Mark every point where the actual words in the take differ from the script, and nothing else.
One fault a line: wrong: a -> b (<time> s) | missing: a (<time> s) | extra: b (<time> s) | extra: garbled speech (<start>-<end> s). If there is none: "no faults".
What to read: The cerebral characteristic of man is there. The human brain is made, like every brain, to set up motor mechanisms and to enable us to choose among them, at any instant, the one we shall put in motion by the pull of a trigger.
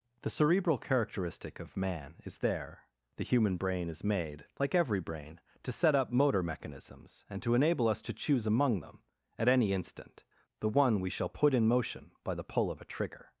no faults